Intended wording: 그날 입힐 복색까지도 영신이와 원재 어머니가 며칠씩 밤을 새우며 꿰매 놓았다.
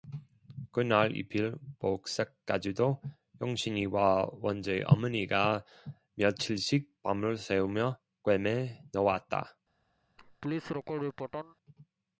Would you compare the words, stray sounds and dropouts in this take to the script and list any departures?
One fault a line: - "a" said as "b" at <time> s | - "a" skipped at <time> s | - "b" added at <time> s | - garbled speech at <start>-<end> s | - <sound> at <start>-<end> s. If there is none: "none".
- laugh at 10.2-11.6 s